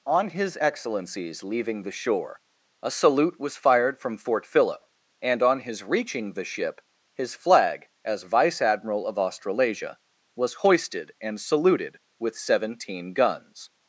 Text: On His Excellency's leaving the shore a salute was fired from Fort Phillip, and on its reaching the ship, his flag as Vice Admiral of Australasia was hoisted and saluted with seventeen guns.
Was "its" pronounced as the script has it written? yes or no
no